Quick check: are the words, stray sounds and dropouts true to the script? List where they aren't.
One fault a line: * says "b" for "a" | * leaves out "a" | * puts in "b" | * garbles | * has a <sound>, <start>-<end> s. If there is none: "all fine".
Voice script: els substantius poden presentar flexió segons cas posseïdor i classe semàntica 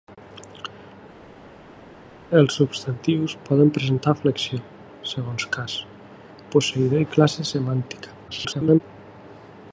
* garbles